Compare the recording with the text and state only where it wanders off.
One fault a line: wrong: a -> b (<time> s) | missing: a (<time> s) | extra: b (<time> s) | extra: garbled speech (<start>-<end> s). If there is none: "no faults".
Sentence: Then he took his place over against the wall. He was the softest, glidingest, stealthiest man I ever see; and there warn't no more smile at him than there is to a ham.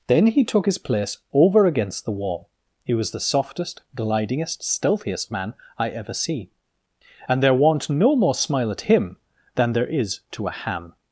no faults